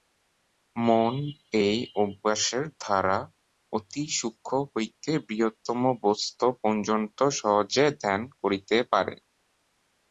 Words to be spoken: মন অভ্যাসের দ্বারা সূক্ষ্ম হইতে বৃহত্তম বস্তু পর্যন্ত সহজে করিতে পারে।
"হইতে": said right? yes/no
yes